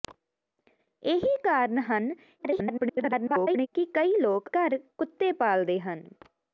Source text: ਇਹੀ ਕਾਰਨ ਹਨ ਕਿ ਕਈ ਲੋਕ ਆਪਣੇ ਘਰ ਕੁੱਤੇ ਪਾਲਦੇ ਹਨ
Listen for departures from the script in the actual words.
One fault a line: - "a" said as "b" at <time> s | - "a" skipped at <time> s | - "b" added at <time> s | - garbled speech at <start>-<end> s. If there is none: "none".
- garbled speech at 2.4-3.7 s
- "ਆਪਣੇ" skipped at 4.5 s